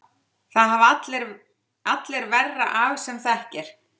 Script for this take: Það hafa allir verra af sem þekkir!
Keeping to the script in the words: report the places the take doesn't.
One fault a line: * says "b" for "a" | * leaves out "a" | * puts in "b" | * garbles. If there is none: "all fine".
all fine